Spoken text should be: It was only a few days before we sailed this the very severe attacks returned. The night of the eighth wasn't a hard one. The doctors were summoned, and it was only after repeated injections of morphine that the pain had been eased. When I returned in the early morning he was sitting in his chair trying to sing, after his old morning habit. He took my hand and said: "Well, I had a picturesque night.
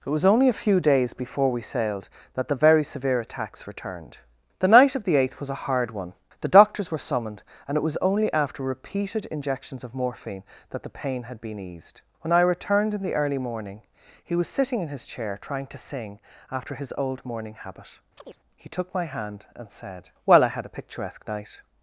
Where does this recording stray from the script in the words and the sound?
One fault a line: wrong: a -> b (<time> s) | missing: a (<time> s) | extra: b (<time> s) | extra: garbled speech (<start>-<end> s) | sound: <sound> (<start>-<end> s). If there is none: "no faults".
wrong: this -> that (2.3 s)
wrong: wasn't -> was (5.4 s)
sound: chirp (18.2-18.4 s)